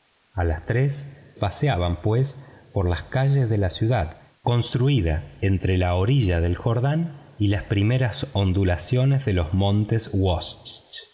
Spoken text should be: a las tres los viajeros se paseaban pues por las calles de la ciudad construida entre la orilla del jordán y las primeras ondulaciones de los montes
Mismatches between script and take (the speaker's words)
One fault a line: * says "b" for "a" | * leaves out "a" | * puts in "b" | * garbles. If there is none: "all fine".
* leaves out "los viajeros se"